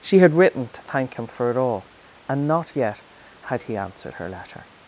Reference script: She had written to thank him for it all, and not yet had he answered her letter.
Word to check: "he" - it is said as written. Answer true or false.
true